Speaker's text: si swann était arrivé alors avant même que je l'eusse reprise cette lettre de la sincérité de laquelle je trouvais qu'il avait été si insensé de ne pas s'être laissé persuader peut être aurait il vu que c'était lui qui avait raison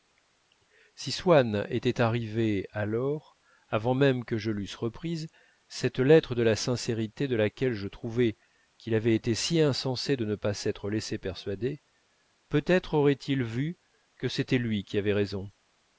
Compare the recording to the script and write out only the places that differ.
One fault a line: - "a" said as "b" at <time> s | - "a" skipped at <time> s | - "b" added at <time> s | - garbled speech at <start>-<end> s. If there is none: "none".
none